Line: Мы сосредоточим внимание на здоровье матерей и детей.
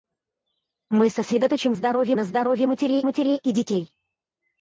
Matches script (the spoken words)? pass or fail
fail